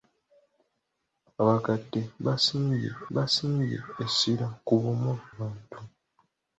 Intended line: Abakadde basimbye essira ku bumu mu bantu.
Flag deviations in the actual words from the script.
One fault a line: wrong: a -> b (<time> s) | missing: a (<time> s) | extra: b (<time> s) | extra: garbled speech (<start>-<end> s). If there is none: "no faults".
extra: basimbye (3.2 s)
missing: mu (5.1 s)